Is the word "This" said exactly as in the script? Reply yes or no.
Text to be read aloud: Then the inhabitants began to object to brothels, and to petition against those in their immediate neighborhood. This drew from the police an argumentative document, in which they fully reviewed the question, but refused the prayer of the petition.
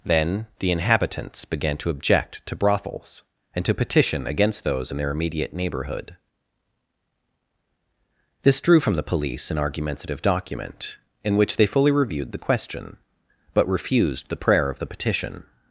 yes